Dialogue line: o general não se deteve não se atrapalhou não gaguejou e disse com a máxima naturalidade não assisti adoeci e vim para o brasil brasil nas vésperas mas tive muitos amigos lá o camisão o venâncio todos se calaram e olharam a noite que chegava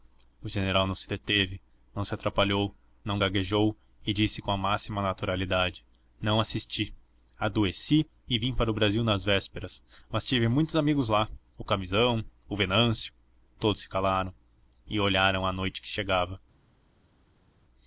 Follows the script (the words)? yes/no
no